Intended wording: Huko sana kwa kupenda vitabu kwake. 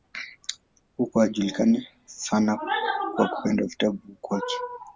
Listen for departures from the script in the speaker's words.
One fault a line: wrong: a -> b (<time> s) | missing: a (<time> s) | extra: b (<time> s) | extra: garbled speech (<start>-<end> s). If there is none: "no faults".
extra: alijulikana (1.2 s)